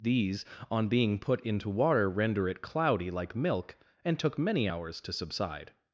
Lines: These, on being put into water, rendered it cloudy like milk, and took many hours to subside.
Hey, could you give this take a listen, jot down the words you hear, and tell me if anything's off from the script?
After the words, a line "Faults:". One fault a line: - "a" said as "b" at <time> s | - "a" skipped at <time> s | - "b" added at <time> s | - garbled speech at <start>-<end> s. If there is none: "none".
These, on being put into water, render it cloudy like milk, and took many hours to subside.
Faults:
- "rendered" said as "render" at 2.1 s